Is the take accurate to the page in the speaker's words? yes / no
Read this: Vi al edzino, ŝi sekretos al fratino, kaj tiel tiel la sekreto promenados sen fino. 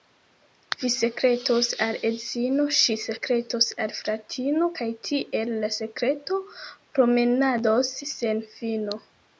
no